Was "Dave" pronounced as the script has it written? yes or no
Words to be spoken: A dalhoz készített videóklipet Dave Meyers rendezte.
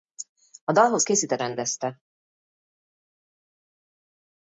no